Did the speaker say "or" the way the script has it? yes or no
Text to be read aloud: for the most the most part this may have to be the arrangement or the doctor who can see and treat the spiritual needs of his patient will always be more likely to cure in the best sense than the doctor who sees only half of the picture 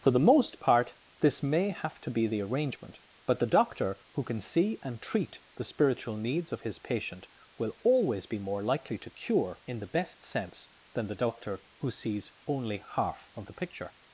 no